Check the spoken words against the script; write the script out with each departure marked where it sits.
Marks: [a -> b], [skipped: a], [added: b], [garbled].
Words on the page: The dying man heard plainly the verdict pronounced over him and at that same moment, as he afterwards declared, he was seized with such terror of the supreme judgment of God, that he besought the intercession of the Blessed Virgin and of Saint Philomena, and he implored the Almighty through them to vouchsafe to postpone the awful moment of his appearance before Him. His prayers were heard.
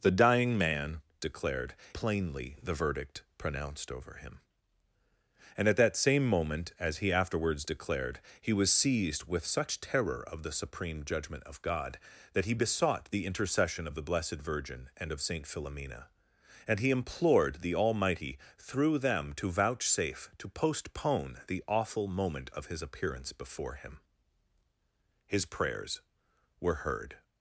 The dying man [heard -> declared] plainly the verdict pronounced over him and at that same moment, as he afterwards declared, he was seized with such terror of the supreme judgment of God, that he besought the intercession of the Blessed Virgin and of Saint Philomena, and he implored the Almighty through them to vouchsafe to postpone the awful moment of his appearance before Him. His prayers were heard.